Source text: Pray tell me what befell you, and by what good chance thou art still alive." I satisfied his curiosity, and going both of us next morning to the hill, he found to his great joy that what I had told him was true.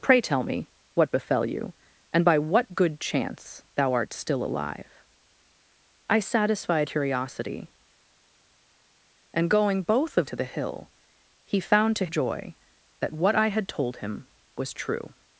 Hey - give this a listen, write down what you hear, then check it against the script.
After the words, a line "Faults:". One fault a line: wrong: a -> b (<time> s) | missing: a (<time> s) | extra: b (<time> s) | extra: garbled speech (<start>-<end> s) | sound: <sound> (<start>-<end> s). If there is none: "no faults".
Pray tell me what befell you, and by what good chance thou art still alive." I satisfied curiosity, and going both of to the hill, he found to joy that what I had told him was true.
Faults:
missing: his (6.9 s)
missing: us next morning (10.3 s)
missing: his great (12.1 s)